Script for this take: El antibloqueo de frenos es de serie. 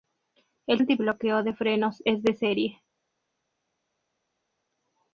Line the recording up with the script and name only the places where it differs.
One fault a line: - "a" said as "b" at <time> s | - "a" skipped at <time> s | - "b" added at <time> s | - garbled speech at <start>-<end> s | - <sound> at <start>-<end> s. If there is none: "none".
none